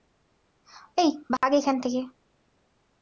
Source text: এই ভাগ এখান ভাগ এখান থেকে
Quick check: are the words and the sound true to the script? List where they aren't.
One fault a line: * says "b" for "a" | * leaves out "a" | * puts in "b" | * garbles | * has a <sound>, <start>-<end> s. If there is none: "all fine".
* has a dropout, 1.4-1.4 s
* leaves out "ভাগ এখান"